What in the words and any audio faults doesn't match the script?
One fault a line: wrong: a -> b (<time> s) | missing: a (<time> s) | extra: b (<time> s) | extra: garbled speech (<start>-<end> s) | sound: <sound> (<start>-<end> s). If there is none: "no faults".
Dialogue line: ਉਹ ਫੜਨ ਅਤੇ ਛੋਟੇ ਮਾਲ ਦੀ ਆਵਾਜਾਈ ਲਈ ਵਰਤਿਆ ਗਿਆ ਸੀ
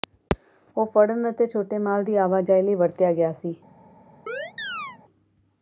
sound: chirp (4.3-5.0 s)